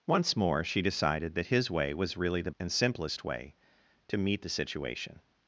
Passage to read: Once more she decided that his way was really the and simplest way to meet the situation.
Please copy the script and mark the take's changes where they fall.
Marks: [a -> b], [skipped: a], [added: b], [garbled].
Once more she decided that his way was really the and simplest way to meet the situation.